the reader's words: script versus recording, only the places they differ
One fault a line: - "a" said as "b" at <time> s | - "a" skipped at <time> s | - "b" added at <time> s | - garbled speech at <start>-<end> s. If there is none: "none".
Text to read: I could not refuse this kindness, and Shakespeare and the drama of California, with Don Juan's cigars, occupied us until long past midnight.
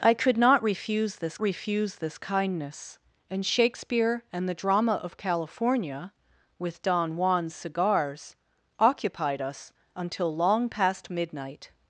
- "refuse this" added at 1.4 s